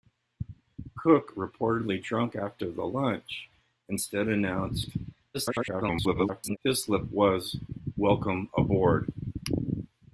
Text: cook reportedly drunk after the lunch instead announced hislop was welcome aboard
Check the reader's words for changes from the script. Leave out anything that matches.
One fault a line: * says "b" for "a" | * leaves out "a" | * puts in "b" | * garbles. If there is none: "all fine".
* garbles